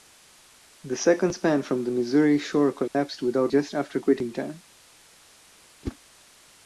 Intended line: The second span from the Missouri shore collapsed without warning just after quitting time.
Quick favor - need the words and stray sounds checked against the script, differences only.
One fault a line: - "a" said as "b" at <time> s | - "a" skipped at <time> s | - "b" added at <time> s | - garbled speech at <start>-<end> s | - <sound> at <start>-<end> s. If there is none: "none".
- dropout at 2.9-2.9 s
- "warning" skipped at 3.5 s
- whoosh at 5.8-6.0 s